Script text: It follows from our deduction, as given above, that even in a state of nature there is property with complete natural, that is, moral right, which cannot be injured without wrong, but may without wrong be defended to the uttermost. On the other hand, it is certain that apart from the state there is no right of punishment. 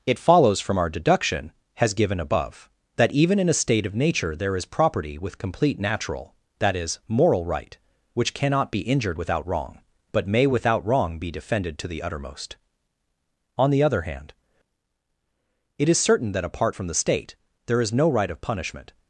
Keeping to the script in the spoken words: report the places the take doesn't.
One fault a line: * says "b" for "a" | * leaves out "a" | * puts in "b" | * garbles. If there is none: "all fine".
* says "has" for "as"